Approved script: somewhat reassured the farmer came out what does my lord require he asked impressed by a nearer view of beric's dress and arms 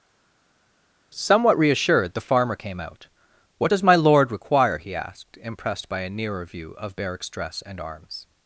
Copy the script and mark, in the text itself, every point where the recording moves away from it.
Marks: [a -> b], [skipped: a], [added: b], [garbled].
somewhat reassured the farmer came out what does my lord require he asked impressed by a nearer view of beric's dress and arms